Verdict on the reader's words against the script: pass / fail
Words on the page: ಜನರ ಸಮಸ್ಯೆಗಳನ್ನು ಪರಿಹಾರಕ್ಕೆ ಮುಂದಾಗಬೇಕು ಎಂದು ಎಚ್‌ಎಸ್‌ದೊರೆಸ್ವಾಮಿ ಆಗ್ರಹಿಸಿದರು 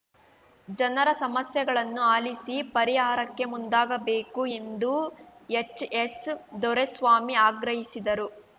fail